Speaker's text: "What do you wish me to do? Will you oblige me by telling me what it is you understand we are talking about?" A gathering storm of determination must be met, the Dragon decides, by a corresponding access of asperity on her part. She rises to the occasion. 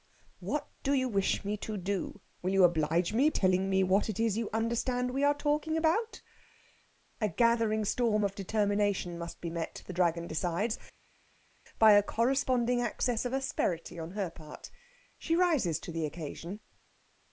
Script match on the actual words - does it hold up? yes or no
no